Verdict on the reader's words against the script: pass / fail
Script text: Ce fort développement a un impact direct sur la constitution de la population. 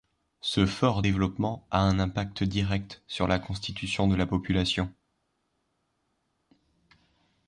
pass